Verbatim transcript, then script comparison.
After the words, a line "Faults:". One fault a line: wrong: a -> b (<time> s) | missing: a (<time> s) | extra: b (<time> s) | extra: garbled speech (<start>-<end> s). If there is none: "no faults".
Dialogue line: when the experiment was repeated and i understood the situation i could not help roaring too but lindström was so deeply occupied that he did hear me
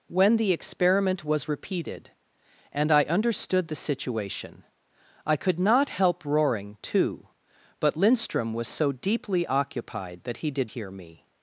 when the experiment was repeated and i understood the situation i could not help roaring too but lindström was so deeply occupied that he did hear me
Faults:
no faults